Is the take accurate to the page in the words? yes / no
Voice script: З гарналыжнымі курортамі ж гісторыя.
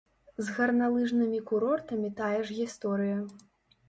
no